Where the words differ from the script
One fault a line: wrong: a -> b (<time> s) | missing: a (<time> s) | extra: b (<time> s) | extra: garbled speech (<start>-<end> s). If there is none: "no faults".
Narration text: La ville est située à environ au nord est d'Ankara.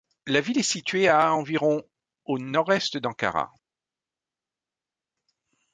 no faults